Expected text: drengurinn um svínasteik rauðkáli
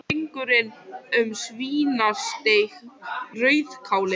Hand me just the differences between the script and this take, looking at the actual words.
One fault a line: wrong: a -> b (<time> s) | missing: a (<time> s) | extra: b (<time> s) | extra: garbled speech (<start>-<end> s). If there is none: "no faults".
no faults